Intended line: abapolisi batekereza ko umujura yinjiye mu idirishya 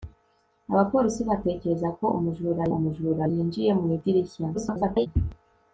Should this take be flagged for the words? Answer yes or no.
yes